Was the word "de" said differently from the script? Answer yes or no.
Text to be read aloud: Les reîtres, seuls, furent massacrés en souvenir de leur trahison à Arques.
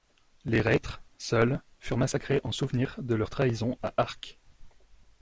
no